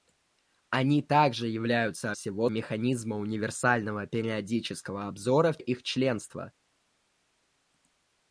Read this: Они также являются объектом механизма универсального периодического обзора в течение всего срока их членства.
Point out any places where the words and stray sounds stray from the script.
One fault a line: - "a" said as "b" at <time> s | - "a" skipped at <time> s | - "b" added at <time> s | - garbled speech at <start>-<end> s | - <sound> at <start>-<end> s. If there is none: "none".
- "объектом" said as "всего" at 2.1 s
- "течение всего срока" skipped at 5.6 s